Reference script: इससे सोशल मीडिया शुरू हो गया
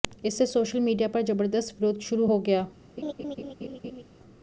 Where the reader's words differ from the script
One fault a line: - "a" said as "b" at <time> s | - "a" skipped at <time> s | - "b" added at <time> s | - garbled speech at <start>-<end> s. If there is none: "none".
- "पर जबरदस्त विरोध" added at 1.1 s